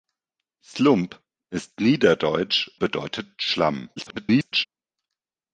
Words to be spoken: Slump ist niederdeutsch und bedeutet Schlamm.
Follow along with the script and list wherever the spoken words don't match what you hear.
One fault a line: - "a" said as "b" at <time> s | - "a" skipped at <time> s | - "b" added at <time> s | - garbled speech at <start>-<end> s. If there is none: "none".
- "und" skipped at 2.7 s
- garbled speech at 4.0-4.7 s